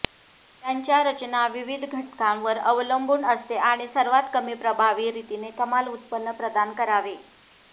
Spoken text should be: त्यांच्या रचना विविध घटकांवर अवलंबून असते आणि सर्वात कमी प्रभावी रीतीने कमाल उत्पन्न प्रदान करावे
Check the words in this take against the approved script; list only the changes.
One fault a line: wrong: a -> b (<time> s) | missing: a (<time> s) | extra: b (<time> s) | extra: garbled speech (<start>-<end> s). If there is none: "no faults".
no faults